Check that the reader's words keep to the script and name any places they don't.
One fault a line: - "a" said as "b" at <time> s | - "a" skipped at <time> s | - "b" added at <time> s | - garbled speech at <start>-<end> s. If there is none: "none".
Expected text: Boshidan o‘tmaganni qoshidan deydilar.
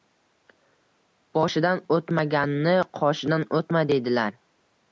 - "o‘tma" added at 3.6 s